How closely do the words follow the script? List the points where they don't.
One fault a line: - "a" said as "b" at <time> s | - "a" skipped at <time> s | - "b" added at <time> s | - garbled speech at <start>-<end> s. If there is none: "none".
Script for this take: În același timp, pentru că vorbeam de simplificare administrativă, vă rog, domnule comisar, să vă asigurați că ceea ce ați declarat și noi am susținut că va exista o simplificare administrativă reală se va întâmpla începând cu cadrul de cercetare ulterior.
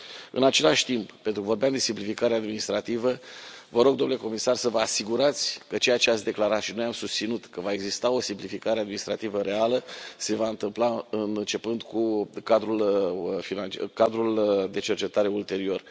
none